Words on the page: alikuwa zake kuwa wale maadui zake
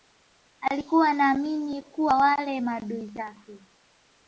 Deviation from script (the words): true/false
true